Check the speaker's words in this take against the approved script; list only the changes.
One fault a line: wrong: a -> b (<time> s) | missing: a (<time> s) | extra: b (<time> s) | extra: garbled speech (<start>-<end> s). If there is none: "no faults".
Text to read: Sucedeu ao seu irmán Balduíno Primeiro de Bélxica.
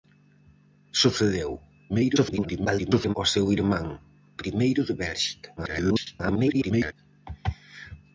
extra: garbled speech (1.9-3.1 s)
missing: Balduíno (3.9 s)
extra: garbled speech (5.6-6.9 s)